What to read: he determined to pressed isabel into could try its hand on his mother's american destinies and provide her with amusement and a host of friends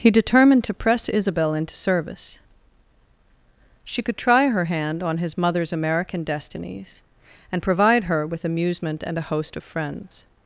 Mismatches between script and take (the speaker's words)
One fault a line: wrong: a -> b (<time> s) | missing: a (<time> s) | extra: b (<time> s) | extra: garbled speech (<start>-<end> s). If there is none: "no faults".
wrong: pressed -> press (0.7 s)
extra: service she (1.8 s)
wrong: its -> her (4.5 s)